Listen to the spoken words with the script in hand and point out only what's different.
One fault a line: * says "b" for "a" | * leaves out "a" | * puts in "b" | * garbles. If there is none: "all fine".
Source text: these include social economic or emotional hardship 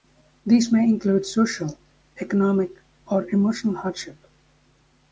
* puts in "may"